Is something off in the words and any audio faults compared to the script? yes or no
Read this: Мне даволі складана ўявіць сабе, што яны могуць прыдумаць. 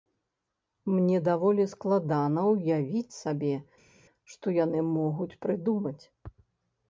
no